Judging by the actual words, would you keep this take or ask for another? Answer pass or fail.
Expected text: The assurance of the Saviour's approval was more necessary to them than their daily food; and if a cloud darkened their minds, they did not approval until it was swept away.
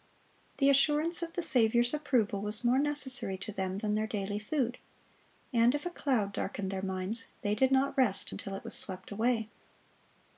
fail